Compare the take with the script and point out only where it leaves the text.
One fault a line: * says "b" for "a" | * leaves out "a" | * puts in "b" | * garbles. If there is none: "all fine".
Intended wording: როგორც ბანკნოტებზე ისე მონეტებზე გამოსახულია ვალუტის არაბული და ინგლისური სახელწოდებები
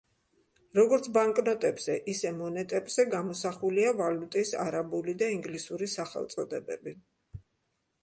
all fine